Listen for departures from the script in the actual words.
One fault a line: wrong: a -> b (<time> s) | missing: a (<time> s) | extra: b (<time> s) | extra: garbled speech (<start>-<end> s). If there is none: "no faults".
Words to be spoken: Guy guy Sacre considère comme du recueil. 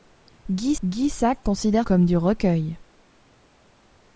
no faults